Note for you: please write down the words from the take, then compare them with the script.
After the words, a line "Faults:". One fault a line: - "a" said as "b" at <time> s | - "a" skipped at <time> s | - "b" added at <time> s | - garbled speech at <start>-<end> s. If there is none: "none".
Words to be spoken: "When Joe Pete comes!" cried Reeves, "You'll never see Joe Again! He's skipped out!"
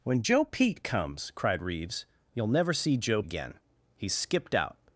"When Joe Pete comes!" cried Reeves, "You'll never see Joe Again! He's skipped out!"
Faults:
none